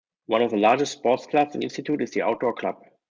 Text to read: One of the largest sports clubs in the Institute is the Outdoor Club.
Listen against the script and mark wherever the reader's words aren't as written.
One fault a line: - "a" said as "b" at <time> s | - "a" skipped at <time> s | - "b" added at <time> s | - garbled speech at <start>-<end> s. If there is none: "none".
- "the" skipped at 1.6 s